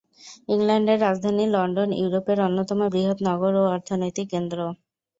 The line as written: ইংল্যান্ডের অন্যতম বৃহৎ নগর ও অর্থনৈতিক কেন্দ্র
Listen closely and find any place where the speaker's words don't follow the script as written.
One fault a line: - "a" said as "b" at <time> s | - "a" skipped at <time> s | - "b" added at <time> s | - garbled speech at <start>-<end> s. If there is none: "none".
- "রাজধানী লন্ডন ইউরোপের" added at 1.0 s